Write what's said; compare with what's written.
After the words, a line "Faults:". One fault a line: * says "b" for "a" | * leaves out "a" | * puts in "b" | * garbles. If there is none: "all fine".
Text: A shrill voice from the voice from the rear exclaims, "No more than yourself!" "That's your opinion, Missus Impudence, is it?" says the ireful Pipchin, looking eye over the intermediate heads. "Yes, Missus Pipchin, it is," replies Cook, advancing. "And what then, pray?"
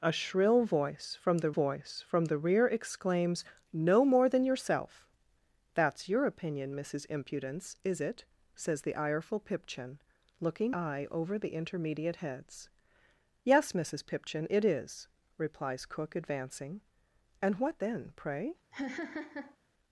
A shrill voice from the voice from the rear exclaims, "No more than yourself!" "That's your opinion, Missus Impudence, is it?" says the ireful Pipchin, looking eye over the intermediate heads. "Yes, Missus Pipchin, it is," replies Cook, advancing. "And what then, pray?"
Faults:
all fine